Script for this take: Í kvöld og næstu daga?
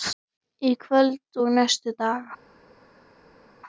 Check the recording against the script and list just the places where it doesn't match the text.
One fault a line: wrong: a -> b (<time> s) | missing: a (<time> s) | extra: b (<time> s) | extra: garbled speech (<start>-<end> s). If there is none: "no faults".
no faults